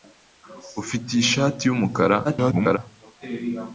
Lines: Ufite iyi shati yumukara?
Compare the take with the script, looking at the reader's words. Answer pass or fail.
fail